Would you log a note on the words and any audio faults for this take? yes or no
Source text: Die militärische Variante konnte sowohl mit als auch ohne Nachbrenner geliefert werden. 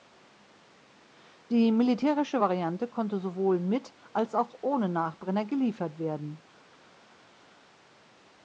no